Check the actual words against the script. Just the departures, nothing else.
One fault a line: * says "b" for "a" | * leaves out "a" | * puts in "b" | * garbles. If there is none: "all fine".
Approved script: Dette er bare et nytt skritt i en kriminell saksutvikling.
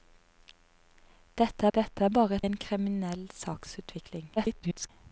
* puts in "dette"
* leaves out "nytt skritt i"
* garbles